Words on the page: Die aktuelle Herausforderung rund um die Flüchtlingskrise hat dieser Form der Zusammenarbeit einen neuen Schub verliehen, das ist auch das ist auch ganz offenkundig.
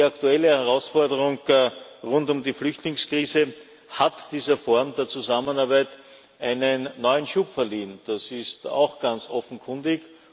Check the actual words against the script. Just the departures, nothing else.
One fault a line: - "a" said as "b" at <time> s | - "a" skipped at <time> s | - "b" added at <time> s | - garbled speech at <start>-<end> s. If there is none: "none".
- "das ist auch" skipped at 9.0 s